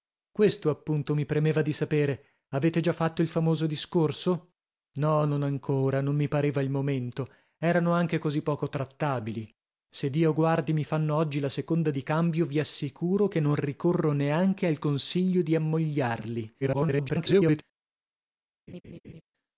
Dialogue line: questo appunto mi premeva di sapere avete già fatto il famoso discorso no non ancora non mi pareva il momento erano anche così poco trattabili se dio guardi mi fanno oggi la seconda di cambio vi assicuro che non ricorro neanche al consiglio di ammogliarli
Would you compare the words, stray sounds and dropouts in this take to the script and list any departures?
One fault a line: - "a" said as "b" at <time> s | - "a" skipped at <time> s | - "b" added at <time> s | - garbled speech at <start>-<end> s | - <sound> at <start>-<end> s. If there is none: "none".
- garbled speech at 16.6-17.6 s
- laugh at 18.7-19.2 s